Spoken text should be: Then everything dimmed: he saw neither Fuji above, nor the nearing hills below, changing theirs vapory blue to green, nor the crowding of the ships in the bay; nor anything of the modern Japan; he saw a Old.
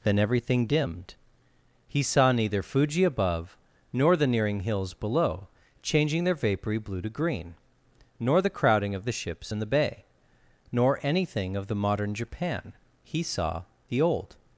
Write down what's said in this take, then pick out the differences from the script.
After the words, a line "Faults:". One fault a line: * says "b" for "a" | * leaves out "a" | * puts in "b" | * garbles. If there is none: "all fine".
Then everything dimmed: he saw neither Fuji above, nor the nearing hills below, changing their vapory blue to green, nor the crowding of the ships in the bay; nor anything of the modern Japan; he saw the Old.
Faults:
* says "their" for "theirs"
* says "the" for "a"